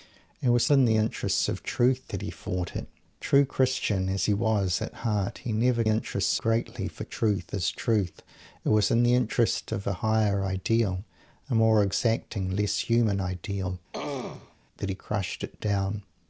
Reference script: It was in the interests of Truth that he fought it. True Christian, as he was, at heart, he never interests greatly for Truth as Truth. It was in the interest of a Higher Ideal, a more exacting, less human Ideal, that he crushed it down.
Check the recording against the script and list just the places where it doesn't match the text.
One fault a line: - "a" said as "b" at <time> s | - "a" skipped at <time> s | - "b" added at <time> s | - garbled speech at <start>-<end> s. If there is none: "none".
none